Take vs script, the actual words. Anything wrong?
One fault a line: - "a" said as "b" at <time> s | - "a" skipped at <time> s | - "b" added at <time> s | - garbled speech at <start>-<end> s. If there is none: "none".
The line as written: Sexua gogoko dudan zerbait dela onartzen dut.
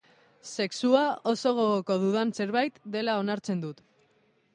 - "oso" added at 1.3 s